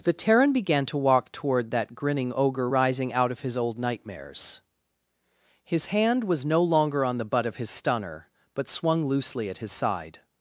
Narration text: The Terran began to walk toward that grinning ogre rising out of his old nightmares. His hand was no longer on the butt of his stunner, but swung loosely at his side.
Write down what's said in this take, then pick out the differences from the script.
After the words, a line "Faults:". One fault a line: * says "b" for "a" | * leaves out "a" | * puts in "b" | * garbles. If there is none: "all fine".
The Terran began to walk toward that grinning ogre rising out of his old nightmares. His hand was no longer on the butt of his stunner, but swung loosely at his side.
Faults:
all fine